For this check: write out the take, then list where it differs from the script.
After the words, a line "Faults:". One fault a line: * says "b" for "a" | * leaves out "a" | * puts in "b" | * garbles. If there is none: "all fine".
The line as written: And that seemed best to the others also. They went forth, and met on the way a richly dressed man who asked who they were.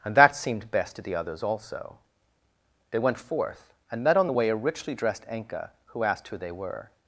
And that seemed best to the others also. They went forth, and met on the way a richly dressed enka who asked who they were.
Faults:
* says "enka" for "man"